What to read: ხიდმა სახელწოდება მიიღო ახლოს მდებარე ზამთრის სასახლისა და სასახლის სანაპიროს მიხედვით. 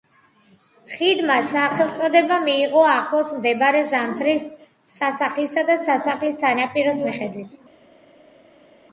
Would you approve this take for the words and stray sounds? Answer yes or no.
yes